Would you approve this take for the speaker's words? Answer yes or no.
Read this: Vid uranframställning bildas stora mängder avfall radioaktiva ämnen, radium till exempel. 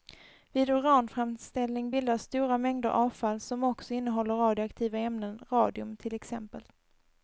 no